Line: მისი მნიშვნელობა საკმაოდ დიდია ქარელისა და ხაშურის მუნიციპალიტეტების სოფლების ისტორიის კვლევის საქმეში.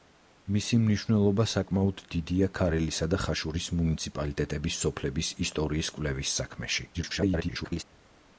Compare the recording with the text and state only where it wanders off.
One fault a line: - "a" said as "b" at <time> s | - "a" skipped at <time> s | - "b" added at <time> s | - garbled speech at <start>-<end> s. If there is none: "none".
- garbled speech at 6.9-7.8 s